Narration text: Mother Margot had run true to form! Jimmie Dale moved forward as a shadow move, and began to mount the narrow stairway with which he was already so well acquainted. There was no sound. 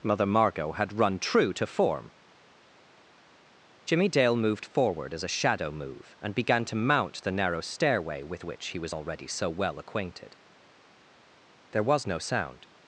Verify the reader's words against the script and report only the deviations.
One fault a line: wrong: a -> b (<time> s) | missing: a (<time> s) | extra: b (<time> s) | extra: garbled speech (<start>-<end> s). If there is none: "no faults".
no faults